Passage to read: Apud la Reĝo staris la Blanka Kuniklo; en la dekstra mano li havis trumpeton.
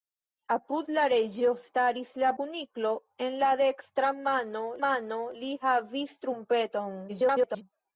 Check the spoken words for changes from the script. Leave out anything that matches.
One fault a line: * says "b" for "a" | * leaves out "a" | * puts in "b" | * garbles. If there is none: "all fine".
* leaves out "Blanka"
* puts in "mano"
* garbles